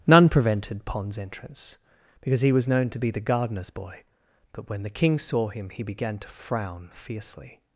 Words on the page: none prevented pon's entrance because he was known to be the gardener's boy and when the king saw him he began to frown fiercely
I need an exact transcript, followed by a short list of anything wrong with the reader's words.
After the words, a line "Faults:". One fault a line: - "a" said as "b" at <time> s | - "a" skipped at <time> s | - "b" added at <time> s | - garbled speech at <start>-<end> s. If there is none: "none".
none prevented pon's entrance because he was known to be the gardener's boy but when the king saw him he began to frown fiercely
Faults:
- "and" said as "but" at 4.5 s